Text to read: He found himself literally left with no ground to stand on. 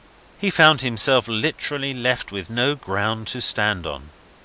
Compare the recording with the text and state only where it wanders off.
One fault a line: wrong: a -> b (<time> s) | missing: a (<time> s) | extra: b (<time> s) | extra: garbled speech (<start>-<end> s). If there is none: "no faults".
no faults